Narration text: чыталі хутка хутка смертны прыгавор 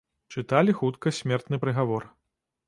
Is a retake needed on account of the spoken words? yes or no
yes